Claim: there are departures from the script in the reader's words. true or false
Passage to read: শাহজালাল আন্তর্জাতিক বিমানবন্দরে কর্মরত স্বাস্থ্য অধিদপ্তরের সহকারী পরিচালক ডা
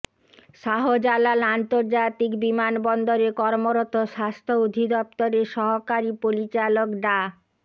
false